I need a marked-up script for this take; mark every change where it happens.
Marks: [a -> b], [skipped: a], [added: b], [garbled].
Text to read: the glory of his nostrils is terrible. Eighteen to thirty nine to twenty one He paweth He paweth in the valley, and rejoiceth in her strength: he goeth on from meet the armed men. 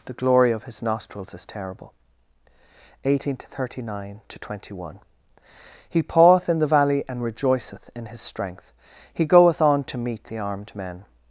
the glory of his nostrils is terrible. Eighteen to thirty nine to twenty one He paweth [skipped: He paweth] in the valley, and rejoiceth in [her -> his] strength: he goeth on [from -> to] meet the armed men.